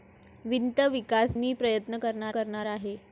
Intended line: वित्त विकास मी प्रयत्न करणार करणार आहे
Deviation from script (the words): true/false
false